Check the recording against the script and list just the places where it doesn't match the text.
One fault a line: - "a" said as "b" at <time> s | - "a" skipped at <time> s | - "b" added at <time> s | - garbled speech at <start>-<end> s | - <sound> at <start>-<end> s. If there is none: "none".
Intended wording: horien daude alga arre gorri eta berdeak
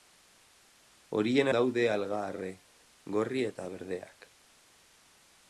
none